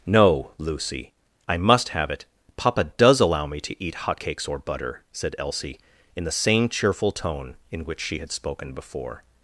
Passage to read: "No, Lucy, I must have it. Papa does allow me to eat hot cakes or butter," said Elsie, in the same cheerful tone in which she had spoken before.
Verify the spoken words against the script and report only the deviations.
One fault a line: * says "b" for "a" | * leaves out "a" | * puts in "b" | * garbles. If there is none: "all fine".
all fine